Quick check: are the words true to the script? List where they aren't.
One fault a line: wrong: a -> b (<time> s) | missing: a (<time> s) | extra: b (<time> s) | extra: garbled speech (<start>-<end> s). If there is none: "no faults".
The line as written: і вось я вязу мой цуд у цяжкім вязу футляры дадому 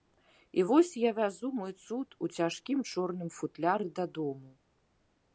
wrong: вязу -> чорным (2.9 s)